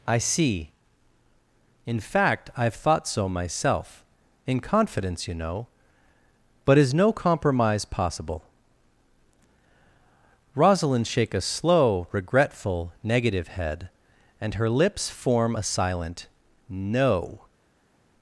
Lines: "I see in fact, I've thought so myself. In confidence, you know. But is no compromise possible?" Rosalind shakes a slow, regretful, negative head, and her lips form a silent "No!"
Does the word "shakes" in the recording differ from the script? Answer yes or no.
yes